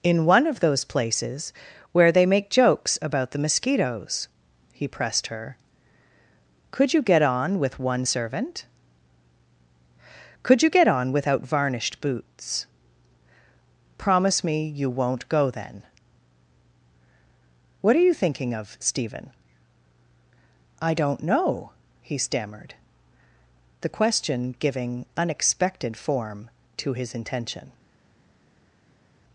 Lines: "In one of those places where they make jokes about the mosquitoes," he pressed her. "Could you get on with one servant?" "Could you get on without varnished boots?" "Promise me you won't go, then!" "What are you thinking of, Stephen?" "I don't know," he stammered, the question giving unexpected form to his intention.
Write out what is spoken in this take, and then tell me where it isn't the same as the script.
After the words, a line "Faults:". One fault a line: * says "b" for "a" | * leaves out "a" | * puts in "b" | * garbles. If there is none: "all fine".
"In one of those places where they make jokes about the mosquitoes," he pressed her. "Could you get on with one servant?" "Could you get on without varnished boots?" "Promise me you won't go, then!" "What are you thinking of, Stephen?" "I don't know," he stammered, the question giving unexpected form to his intention.
Faults:
all fine